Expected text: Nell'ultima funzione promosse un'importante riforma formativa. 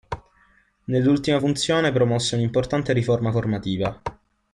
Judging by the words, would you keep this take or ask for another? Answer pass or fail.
pass